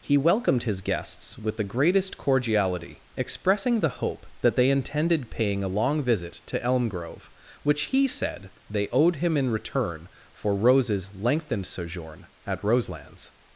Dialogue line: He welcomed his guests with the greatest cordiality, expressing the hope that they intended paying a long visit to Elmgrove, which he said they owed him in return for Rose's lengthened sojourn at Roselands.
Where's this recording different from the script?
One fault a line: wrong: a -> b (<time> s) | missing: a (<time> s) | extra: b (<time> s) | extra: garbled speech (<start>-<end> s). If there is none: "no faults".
no faults